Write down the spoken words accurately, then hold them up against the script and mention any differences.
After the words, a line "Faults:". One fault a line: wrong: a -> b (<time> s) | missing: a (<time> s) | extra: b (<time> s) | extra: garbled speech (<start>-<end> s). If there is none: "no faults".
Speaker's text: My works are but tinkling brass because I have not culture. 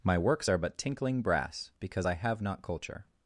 My works are but tinkling brass because I have not culture.
Faults:
no faults